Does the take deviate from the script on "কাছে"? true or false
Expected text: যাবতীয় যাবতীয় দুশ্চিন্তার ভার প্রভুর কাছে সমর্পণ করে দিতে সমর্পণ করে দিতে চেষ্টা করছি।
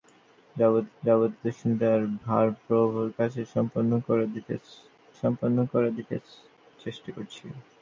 false